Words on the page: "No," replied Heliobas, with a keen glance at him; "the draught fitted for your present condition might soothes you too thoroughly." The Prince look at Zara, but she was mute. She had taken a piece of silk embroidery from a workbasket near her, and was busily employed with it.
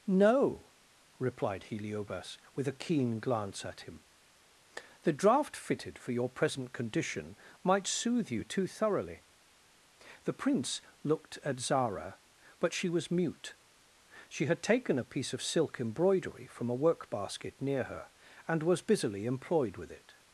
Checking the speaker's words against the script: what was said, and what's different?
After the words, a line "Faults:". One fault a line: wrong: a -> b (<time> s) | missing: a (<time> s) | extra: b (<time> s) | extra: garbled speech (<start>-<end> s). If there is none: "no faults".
"No," replied Heliobas, with a keen glance at him; "the draught fitted for your present condition might soothe you too thoroughly." The Prince looked at Zara, but she was mute. She had taken a piece of silk embroidery from a workbasket near her, and was busily employed with it.
Faults:
wrong: soothes -> soothe (7.8 s)
wrong: look -> looked (11.0 s)